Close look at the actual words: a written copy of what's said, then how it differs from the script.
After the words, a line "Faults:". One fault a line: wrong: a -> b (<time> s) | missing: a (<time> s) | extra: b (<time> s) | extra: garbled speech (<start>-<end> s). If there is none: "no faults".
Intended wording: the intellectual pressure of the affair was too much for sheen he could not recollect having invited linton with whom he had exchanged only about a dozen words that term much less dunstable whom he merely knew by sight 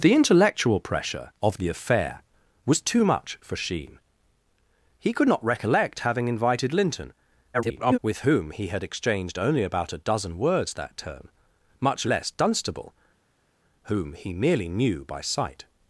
the intellectual pressure of the affair was too much for sheen he could not recollect having invited linton [garbled] with whom he had exchanged only about a dozen words that term much less dunstable whom he merely knew by sight
Faults:
extra: garbled speech (7.5-8.0 s)